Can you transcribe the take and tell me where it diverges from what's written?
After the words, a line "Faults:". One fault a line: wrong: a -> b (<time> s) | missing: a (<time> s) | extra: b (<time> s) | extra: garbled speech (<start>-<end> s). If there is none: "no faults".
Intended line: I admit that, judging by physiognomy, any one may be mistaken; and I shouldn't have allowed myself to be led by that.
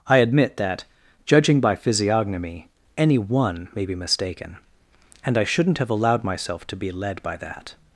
I admit that, judging by physiognomy, any one may be mistaken; and I shouldn't have allowed myself to be led by that.
Faults:
no faults